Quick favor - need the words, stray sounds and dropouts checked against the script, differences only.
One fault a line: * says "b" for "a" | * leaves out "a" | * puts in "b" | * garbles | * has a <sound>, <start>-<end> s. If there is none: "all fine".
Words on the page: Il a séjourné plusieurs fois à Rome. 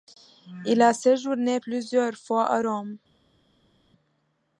all fine